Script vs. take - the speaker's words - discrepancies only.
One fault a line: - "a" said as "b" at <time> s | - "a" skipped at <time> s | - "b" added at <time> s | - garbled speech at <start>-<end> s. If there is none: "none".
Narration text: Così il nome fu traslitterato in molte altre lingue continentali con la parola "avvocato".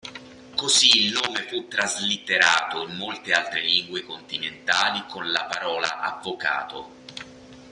none